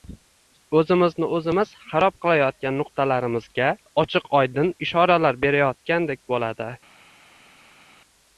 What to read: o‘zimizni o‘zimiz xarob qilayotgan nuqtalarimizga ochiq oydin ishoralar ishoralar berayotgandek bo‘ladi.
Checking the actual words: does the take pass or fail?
fail